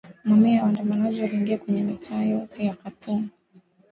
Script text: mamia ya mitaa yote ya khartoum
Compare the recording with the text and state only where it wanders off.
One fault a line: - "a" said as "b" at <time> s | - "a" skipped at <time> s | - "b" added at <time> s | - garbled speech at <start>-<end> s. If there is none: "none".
- "waandamanaji waliingia kwenye" added at 0.6 s